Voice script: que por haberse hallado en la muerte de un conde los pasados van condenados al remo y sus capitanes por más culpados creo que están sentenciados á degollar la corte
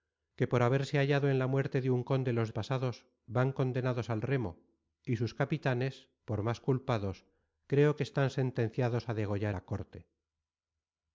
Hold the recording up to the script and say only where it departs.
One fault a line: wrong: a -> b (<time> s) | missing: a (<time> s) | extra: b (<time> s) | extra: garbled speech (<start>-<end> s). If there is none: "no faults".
no faults